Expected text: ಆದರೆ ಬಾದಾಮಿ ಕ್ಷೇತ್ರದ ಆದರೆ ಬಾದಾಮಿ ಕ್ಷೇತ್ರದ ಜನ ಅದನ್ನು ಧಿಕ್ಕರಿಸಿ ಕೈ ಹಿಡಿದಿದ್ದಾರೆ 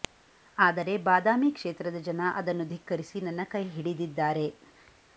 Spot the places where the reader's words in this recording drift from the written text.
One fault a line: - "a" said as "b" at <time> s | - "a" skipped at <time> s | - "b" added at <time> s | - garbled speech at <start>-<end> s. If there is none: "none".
- "ಆದರೆ ಬಾದಾಮಿ ಕ್ಷೇತ್ರದ" skipped at 2.0 s
- "ನನ್ನ" added at 3.2 s